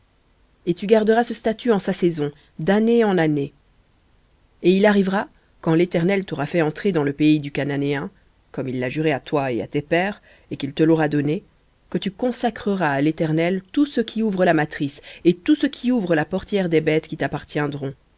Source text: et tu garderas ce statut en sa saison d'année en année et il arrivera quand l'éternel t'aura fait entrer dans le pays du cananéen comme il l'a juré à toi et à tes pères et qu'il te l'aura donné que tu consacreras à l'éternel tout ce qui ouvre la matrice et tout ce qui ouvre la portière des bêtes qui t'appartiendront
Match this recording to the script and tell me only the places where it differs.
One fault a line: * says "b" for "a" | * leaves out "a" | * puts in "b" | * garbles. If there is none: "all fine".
all fine